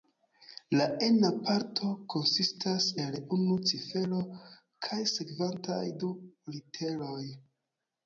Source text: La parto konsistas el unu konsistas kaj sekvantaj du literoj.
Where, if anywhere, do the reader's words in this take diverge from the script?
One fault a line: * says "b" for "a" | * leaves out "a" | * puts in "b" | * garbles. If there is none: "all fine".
* puts in "ena"
* says "cifero" for "konsistas"